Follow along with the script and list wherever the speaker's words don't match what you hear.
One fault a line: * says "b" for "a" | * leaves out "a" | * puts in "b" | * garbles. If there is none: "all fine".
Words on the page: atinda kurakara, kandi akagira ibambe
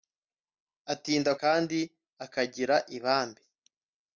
* leaves out "kurakara"